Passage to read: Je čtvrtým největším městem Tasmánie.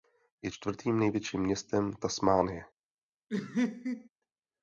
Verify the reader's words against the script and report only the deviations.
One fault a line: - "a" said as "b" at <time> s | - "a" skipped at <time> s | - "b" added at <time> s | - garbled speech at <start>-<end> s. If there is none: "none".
none